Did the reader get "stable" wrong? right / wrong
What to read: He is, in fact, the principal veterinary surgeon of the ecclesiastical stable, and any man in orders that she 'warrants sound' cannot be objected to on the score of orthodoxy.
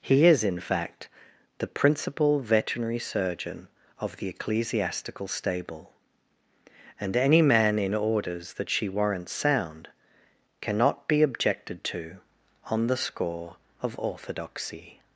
right